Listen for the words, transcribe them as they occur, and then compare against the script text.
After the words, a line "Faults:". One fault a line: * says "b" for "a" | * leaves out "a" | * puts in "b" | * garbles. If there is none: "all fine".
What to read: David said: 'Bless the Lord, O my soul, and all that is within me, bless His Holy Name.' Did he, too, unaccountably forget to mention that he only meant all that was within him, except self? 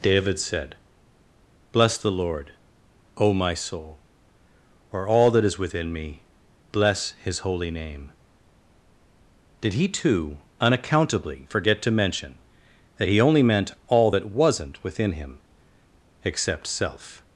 David said: 'Bless the Lord, O my soul, or all that is within me, bless His Holy Name.' Did he, too, unaccountably forget to mention that he only meant all that wasn't within him, except self?
Faults:
* says "or" for "and"
* says "wasn't" for "was"